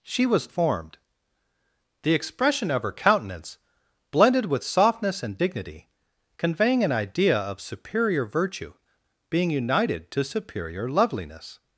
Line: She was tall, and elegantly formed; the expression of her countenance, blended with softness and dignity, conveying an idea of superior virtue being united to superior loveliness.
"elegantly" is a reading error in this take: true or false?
true